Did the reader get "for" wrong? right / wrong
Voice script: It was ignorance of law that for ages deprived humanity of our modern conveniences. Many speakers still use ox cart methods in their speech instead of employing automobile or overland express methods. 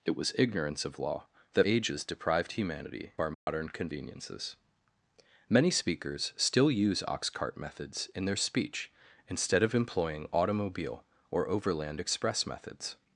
wrong